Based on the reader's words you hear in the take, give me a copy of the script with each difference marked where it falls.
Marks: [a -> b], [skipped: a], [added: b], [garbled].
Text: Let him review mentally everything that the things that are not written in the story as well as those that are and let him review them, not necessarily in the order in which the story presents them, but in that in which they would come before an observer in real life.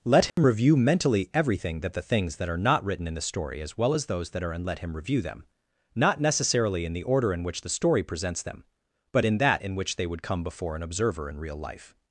Let him review mentally everything that the things that are not written in the story as well as those that are and let him review them, not necessarily in the order in which the story presents them, but in that in which they would come before an observer in real life.